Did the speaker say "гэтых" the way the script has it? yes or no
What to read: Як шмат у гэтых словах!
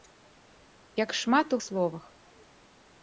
no